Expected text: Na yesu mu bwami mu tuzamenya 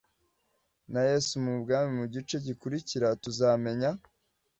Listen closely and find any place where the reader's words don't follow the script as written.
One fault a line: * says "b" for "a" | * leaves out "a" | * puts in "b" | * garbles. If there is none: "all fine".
* puts in "gice gikurikira"